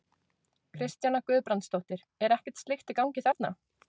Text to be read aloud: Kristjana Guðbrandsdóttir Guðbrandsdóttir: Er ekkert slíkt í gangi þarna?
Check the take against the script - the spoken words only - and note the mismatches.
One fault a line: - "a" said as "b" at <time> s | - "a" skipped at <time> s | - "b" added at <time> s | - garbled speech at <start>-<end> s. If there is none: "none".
- "Guðbrandsdóttir" skipped at 2.0 s